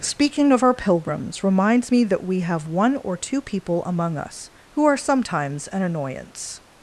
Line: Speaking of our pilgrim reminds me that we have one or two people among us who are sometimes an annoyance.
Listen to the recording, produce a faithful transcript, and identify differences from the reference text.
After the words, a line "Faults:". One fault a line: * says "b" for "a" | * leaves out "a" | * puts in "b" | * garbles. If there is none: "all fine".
Speaking of our pilgrims reminds me that we have one or two people among us who are sometimes an annoyance.
Faults:
* says "pilgrims" for "pilgrim"